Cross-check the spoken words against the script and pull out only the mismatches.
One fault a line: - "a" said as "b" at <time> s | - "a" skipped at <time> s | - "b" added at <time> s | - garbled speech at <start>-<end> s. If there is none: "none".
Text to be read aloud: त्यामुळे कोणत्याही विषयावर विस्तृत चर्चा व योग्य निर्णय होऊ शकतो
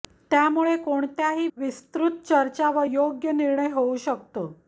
- "विषयावर" skipped at 1.5 s